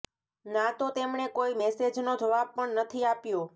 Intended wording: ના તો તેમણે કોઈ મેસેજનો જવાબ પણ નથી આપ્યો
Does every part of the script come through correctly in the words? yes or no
yes